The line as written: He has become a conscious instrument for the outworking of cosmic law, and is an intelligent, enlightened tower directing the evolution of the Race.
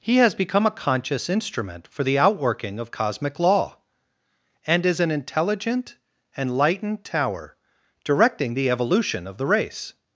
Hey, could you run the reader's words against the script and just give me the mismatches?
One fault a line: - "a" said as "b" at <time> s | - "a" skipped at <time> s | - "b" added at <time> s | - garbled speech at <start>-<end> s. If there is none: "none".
none